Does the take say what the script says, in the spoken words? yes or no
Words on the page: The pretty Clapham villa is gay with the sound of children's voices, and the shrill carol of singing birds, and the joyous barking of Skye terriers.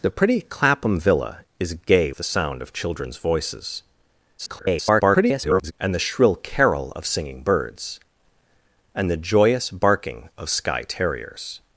no